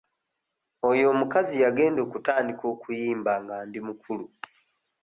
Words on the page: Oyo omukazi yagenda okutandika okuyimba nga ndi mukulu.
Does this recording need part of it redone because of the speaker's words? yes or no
no